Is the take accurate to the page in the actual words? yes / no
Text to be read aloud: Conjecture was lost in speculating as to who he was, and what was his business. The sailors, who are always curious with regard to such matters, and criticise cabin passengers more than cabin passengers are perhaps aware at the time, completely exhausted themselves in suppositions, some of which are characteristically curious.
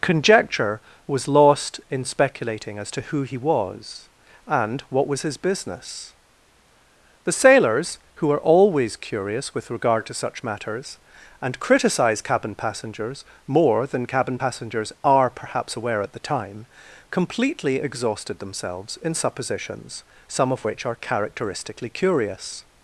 yes